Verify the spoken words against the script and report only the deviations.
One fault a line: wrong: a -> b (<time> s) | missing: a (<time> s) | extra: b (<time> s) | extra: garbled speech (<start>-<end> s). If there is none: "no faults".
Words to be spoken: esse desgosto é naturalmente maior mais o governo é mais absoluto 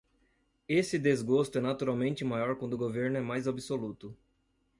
wrong: mais -> quando (2.5 s)